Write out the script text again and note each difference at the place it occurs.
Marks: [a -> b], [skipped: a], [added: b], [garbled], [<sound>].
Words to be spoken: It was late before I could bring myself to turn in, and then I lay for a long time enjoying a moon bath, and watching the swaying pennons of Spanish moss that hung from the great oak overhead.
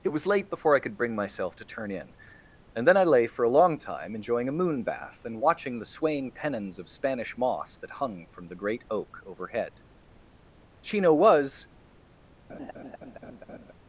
It was late before I could bring myself to turn in, and then I lay for a long time enjoying a moon bath, and watching the swaying pennons of Spanish moss that hung from the great oak overhead. [added: Chino was] [laugh]